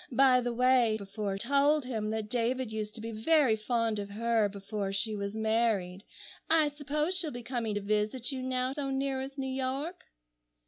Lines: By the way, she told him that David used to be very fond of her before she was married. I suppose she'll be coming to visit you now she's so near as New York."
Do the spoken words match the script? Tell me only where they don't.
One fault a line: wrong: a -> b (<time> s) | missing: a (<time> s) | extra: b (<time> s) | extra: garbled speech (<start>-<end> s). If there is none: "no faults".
wrong: she -> before (0.9 s)
missing: she's (8.7 s)